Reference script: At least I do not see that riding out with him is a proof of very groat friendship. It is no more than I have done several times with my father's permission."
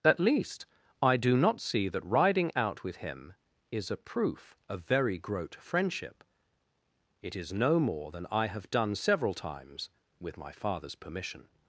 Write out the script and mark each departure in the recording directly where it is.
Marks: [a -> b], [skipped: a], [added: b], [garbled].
At least I do not see that riding out with him is a proof of very groat friendship. It is no more than I have done several times with my father's permission."